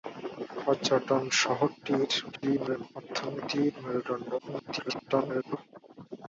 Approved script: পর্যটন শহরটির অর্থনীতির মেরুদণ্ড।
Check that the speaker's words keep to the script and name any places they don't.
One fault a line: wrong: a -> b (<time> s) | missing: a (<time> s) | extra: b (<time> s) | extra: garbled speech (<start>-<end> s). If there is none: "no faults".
extra: garbled speech (2.3-3.0 s)
extra: garbled speech (4.4-5.6 s)